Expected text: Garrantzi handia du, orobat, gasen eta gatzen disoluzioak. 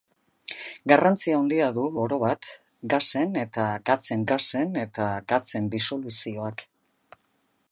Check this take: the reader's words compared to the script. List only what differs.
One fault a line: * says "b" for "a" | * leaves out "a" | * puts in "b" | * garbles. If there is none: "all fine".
* puts in "gasen eta gatzen"